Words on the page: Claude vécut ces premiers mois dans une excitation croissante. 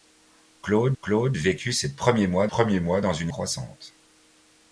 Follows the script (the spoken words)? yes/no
no